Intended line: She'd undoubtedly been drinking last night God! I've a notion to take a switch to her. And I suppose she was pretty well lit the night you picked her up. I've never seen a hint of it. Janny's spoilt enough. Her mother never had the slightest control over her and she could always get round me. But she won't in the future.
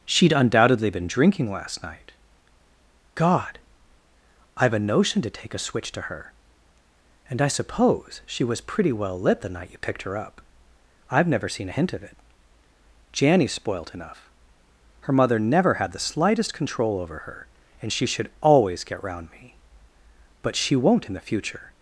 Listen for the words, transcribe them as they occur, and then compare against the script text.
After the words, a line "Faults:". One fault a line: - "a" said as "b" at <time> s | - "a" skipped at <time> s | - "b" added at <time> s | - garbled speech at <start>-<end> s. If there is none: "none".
She'd undoubtedly been drinking last night God! I've a notion to take a switch to her. And I suppose she was pretty well lit the night you picked her up. I've never seen a hint of it. Janny's spoilt enough. Her mother never had the slightest control over her and she should always get round me. But she won't in the future.
Faults:
- "could" said as "should" at 18.1 s